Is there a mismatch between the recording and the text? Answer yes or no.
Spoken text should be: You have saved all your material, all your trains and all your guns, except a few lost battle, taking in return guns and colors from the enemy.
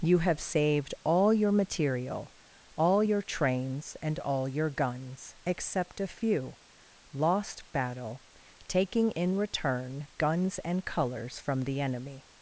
no